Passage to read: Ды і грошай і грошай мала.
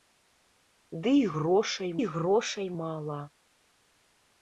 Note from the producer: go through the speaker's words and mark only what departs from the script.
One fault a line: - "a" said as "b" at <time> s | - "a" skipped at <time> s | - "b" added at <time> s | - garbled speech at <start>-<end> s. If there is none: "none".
none